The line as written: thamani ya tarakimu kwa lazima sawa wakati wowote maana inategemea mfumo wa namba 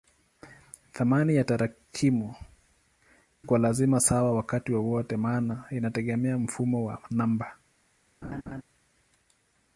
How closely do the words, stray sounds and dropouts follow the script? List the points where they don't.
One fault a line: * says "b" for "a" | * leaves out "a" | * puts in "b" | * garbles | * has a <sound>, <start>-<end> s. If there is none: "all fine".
* has a laugh, 8.2-8.6 s